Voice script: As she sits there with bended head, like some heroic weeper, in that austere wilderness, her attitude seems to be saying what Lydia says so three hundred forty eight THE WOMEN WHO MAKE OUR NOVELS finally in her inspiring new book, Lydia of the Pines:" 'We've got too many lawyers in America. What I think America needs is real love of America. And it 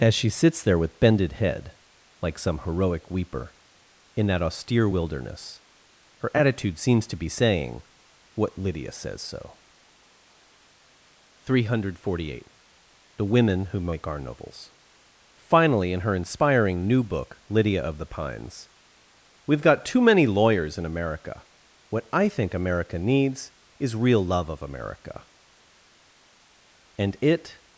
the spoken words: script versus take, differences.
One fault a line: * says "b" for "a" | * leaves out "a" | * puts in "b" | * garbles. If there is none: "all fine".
all fine